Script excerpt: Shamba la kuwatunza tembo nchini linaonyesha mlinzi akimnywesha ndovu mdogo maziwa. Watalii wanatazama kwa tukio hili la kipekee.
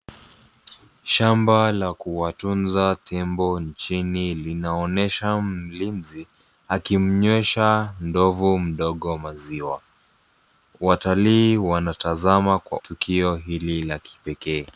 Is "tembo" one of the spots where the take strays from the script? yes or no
no